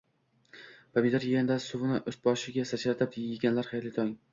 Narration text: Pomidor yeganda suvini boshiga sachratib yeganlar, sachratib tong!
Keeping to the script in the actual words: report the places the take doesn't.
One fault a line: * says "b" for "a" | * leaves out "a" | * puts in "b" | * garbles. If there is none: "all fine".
* puts in "ust"
* says "xayrli" for "sachratib"